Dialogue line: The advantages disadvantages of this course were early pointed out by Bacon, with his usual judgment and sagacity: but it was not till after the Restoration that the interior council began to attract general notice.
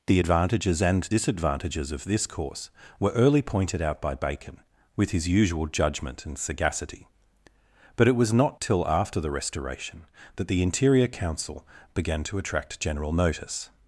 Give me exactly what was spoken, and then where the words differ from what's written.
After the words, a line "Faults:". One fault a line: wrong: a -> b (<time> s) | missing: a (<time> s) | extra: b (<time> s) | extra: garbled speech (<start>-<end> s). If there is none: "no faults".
The advantages and disadvantages of this course were early pointed out by Bacon, with his usual judgment and sagacity: but it was not till after the Restoration that the interior council began to attract general notice.
Faults:
extra: and (0.8 s)